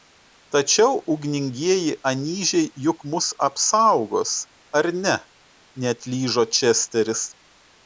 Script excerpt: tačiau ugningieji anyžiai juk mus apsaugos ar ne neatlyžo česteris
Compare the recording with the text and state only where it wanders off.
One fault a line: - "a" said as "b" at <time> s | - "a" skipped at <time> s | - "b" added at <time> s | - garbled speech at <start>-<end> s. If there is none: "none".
none